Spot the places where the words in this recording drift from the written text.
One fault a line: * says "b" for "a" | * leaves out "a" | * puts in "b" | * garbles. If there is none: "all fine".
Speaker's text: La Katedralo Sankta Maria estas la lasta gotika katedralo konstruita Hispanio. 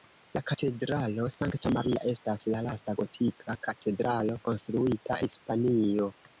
all fine